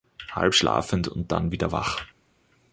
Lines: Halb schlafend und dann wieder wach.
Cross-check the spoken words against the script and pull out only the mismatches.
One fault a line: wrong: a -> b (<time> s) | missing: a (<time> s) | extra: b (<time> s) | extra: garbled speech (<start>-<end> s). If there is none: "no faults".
no faults